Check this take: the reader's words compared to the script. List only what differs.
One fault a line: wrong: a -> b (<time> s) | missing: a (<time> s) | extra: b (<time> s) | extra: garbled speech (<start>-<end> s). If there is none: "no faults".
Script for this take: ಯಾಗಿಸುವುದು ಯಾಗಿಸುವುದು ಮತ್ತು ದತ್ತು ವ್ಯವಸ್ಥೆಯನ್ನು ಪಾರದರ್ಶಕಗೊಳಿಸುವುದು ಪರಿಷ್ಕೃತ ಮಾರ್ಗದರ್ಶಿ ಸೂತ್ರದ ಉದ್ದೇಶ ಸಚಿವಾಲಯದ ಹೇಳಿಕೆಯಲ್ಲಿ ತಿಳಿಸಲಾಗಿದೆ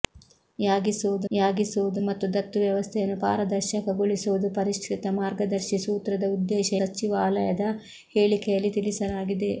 no faults